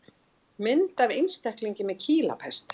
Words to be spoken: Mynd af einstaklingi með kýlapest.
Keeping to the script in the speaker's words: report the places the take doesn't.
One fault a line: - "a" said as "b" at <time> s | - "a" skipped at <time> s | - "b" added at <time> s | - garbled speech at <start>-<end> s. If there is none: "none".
none